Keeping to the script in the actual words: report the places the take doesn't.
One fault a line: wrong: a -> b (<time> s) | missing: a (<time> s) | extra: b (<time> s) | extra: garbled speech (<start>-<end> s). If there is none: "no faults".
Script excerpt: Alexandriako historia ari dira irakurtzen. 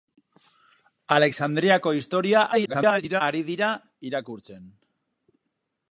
extra: garbled speech (2.5-3.2 s)